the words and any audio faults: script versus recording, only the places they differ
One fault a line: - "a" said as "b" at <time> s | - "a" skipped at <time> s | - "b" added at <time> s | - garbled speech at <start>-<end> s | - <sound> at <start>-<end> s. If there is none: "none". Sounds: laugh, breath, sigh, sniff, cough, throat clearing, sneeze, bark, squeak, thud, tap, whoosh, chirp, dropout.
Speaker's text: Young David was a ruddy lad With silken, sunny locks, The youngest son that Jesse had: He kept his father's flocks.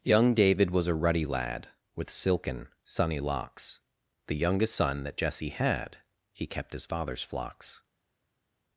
none